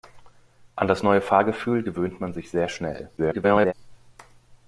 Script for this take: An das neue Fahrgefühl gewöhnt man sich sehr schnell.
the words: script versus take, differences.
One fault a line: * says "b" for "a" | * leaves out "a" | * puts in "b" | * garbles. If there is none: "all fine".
* garbles